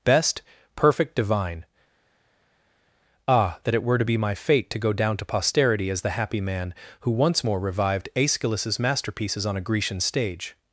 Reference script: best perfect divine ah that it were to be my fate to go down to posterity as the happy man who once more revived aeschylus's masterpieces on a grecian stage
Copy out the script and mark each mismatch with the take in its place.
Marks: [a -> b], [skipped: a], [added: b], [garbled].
best perfect divine ah that it were to be my fate to go down to posterity as the happy man who once more revived aeschylus's masterpieces on a grecian stage